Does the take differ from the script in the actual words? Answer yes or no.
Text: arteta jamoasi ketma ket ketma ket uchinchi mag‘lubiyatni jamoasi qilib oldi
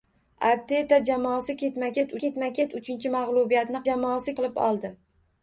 no